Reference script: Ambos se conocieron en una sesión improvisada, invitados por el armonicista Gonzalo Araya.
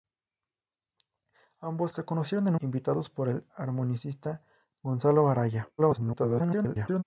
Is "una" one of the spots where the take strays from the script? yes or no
yes